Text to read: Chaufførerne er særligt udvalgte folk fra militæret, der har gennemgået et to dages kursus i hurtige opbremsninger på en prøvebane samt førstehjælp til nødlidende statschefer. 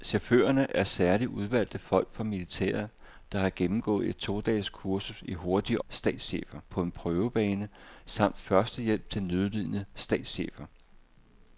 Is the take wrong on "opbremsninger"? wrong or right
wrong